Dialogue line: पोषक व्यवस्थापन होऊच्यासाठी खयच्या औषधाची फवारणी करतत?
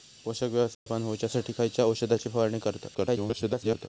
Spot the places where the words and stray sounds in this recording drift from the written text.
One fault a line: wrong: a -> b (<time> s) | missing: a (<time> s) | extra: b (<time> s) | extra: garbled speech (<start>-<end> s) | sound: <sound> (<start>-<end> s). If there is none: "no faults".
sound: dropout (0.7-0.9 s)
extra: garbled speech (2.9-3.9 s)